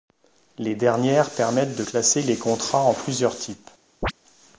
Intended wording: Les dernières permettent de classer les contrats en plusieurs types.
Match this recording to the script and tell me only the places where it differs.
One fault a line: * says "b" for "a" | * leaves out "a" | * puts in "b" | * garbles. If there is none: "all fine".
all fine